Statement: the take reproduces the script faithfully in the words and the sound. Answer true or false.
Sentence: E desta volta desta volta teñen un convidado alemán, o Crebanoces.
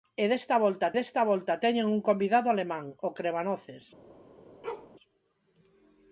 false